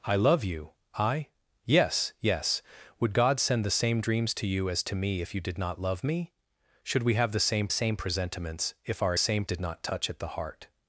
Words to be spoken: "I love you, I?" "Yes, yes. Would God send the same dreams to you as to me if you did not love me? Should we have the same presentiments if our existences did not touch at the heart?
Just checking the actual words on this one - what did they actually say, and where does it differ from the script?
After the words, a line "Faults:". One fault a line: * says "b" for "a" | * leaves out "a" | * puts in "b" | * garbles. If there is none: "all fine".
"I love you, I?" "Yes, yes. Would God send the same dreams to you as to me if you did not love me? Should we have the same same presentiments if our same did not touch at the heart?
Faults:
* puts in "same"
* says "same" for "existences"